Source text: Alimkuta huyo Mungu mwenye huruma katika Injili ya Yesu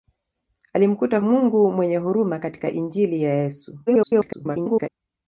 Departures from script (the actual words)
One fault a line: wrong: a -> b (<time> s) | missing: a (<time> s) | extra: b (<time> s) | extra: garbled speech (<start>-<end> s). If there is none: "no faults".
missing: huyo (1.2 s)
extra: garbled speech (3.9-4.9 s)